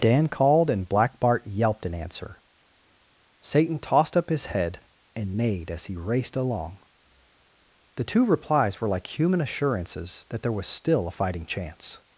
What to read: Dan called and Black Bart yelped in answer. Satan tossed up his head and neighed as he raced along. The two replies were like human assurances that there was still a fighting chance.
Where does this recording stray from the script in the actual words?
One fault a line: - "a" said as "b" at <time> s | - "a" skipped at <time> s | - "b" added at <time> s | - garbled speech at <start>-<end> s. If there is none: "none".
none